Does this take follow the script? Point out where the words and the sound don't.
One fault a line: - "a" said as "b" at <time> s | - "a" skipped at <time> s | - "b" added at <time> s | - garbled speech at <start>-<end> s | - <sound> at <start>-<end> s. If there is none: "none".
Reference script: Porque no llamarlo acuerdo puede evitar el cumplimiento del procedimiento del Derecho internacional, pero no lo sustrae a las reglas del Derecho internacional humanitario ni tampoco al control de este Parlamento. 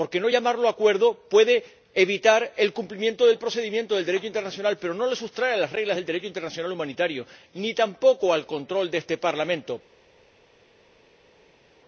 none